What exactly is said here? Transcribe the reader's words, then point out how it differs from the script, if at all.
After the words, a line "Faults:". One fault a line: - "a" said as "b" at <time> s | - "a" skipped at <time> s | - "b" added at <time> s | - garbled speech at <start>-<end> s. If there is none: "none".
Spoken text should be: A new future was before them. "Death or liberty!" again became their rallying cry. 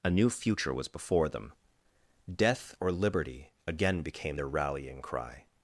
A new future was before them. "Death or liberty!" again became their rallying cry.
Faults:
none